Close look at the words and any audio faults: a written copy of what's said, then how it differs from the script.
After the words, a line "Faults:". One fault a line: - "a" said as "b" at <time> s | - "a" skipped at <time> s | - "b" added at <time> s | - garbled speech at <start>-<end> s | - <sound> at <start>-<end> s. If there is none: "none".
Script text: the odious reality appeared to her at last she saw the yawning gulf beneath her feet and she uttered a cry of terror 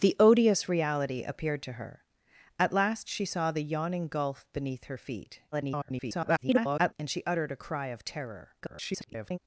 the odious reality appeared to her at last she saw the yawning gulf beneath her feet [garbled] and she uttered a cry of terror [garbled]
Faults:
- garbled speech at 5.5-6.9 s
- garbled speech at 8.6-9.4 s